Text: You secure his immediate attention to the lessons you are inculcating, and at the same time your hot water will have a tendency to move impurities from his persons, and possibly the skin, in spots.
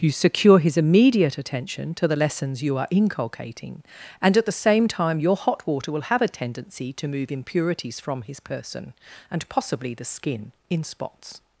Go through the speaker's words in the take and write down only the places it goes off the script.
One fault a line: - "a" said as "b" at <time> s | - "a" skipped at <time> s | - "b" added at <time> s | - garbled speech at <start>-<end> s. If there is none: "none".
- "persons" said as "person" at 8.4 s